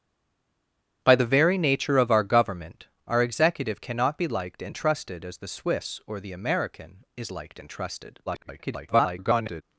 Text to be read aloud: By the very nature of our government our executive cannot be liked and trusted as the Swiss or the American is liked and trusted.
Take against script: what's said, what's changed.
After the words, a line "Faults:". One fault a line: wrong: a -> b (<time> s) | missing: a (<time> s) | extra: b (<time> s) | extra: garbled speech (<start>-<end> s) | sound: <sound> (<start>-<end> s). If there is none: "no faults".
By the very nature of our government our executive cannot be liked and trusted as the Swiss or the American is liked and trusted. [garbled]
Faults:
extra: garbled speech (8.3-9.6 s)